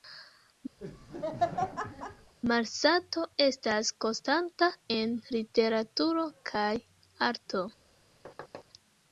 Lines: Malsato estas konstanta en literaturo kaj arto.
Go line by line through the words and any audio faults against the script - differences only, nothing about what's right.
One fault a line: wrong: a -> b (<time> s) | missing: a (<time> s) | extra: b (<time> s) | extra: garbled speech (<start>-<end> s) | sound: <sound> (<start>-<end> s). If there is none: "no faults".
sound: laugh (0.8-2.3 s)
sound: thud (8.2-8.6 s)